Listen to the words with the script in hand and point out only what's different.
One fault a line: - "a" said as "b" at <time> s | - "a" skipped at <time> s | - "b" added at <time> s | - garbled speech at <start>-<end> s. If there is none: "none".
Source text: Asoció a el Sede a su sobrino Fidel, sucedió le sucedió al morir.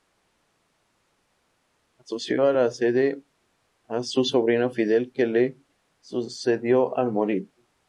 - "el" said as "la" at 2.5 s
- "sucedió" said as "que" at 5.1 s